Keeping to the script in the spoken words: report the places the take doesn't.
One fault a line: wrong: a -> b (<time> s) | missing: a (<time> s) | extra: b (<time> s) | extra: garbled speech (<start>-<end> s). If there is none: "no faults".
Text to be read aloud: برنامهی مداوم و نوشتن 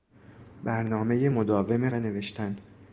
no faults